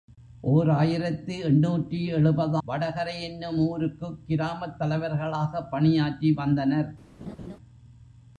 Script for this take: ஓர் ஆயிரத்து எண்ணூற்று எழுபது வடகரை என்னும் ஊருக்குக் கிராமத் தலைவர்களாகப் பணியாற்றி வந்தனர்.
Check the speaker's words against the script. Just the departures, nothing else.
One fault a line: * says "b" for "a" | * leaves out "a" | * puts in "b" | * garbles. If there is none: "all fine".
all fine